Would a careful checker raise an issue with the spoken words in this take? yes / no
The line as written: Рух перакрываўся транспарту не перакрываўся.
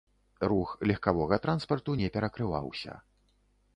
yes